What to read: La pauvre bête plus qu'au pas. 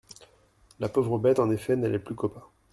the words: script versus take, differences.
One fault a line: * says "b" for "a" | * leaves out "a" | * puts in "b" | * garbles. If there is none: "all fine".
* puts in "en effet n'allait"